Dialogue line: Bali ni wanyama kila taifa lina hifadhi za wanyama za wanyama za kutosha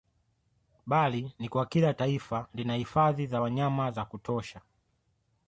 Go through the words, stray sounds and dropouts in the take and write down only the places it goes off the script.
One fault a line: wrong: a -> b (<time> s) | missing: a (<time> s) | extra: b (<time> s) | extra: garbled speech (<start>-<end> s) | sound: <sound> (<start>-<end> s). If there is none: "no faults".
wrong: wanyama -> kwa (1.5 s)
missing: wanyama za (4.1 s)